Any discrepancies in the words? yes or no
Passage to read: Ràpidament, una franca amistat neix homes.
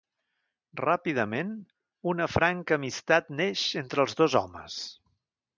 yes